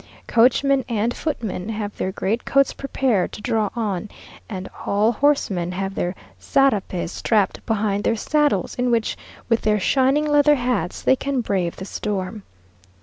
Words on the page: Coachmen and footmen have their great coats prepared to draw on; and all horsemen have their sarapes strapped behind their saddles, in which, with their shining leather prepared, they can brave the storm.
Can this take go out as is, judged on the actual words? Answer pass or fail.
fail